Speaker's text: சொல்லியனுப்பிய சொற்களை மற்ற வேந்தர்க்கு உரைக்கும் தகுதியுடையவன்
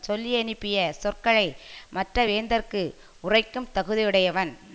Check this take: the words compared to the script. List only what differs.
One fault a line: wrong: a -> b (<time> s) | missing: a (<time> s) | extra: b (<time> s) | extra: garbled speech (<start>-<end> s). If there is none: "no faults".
no faults